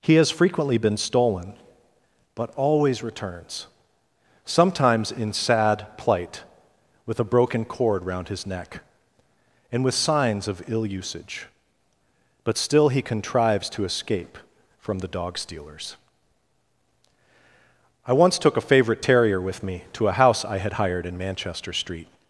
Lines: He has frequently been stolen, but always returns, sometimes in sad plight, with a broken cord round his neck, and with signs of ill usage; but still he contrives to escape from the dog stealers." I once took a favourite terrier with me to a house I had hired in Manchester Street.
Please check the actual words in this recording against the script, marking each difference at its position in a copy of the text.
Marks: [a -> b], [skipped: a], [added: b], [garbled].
He has frequently been stolen, but always returns, sometimes in sad plight, with a broken cord round his neck, and with signs of ill usage; but still he contrives to escape from the dog stealers." I once took a favourite terrier with me to a house I had hired in Manchester Street.